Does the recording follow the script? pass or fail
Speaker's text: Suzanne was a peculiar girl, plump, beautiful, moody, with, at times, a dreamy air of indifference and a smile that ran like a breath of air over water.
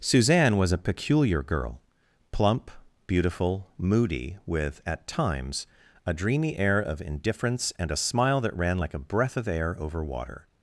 pass